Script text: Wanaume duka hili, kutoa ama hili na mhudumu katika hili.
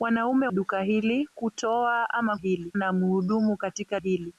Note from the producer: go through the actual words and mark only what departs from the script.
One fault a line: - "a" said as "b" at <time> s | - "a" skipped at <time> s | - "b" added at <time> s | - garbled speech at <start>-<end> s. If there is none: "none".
none